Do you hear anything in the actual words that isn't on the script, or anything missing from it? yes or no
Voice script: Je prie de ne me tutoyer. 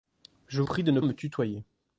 no